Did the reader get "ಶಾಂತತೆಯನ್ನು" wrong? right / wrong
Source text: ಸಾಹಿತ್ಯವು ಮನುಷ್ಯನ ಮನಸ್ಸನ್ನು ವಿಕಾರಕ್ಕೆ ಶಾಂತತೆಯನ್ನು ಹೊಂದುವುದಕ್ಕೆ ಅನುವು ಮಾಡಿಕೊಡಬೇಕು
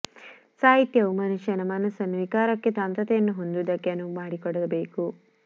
right